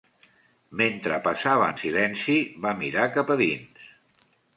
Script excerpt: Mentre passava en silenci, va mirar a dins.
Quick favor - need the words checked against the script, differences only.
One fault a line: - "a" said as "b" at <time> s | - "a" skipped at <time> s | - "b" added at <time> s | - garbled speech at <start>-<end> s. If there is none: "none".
- "cap" added at 3.2 s